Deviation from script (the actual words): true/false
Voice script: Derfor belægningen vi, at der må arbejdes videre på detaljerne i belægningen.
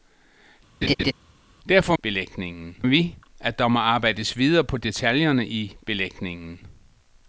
false